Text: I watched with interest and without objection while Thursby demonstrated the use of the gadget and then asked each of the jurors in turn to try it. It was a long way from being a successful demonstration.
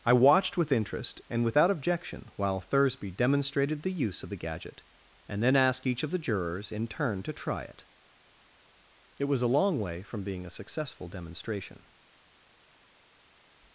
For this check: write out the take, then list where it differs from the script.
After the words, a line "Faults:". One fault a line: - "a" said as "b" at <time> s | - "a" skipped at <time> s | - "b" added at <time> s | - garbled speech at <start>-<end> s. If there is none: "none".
I watched with interest and without objection while Thursby demonstrated the use of the gadget and then asked each of the jurors in turn to try it. It was a long way from being a successful demonstration.
Faults:
none